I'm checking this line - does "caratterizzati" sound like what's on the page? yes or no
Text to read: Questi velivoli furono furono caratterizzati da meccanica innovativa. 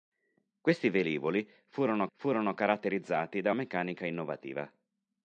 yes